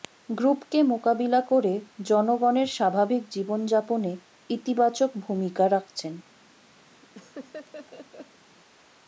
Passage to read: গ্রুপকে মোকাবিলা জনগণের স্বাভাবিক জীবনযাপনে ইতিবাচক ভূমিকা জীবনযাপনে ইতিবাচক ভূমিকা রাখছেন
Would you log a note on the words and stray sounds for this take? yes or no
yes